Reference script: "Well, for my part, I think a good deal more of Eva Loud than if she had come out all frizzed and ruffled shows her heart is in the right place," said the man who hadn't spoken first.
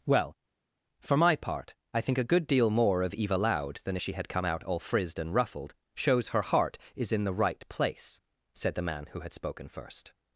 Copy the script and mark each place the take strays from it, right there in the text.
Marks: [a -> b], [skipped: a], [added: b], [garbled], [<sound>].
"Well, for my part, I think a good deal more of Eva Loud than if she had come out all frizzed and ruffled shows her heart is in the right place," said the man who [hadn't -> had] spoken first.